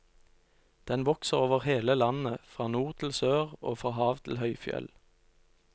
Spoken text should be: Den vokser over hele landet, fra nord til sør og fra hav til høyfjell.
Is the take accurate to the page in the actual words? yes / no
yes